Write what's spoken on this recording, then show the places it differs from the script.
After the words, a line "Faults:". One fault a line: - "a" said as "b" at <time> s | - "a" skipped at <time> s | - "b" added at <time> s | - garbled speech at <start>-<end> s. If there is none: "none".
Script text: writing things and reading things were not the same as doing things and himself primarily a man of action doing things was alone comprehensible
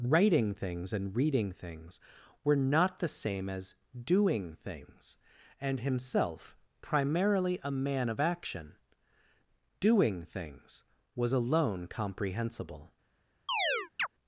writing things and reading things were not the same as doing things and himself primarily a man of action doing things was alone comprehensible
Faults:
none